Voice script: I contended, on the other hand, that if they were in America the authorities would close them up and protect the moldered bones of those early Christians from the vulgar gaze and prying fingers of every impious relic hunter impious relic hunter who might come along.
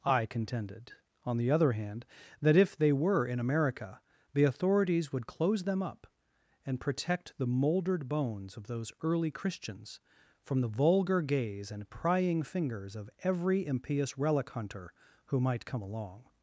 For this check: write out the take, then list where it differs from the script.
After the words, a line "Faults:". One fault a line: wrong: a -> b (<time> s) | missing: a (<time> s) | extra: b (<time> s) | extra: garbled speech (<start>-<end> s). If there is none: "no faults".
I contended, on the other hand, that if they were in America the authorities would close them up and protect the moldered bones of those early Christians from the vulgar gaze and prying fingers of every impious relic hunter who might come along.
Faults:
missing: impious relic hunter (14.9 s)